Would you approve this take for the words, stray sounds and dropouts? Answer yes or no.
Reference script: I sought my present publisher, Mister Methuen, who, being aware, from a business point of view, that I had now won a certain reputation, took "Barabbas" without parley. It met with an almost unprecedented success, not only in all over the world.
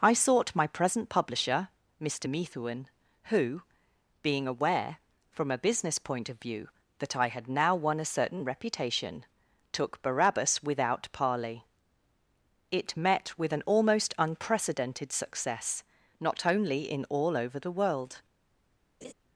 no